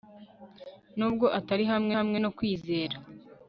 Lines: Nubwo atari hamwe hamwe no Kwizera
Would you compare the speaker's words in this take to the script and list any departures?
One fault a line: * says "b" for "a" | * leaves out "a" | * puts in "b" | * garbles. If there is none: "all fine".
all fine